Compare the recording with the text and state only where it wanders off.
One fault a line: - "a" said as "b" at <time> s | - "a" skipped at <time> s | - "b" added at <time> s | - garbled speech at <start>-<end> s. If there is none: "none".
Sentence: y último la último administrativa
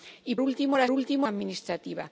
none